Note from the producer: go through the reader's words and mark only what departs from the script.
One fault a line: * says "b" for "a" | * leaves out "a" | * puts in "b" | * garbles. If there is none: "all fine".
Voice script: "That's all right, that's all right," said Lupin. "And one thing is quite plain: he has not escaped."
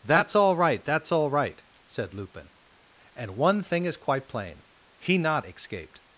* leaves out "has"